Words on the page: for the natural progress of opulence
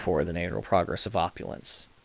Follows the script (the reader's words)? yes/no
yes